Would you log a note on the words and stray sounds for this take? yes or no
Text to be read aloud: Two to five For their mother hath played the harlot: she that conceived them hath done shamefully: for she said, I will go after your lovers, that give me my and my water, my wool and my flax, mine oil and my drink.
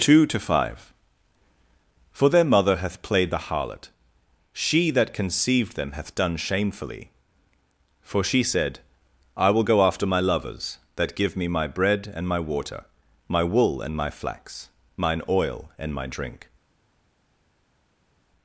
yes